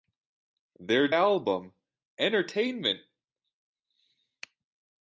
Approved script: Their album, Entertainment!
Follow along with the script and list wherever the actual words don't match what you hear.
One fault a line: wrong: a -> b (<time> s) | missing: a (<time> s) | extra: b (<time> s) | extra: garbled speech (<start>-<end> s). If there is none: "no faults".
no faults